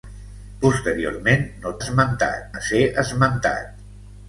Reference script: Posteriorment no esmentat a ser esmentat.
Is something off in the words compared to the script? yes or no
no